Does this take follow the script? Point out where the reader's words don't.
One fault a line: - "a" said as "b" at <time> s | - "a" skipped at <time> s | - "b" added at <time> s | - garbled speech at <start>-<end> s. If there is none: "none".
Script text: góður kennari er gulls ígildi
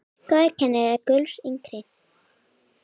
none